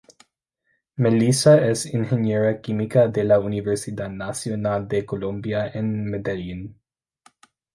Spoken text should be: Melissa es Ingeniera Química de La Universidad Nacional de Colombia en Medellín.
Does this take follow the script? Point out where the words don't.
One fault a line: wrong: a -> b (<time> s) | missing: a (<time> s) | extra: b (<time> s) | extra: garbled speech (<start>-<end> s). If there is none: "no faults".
no faults